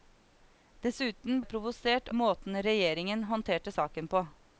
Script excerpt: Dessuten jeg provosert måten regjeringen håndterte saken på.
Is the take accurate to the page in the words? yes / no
yes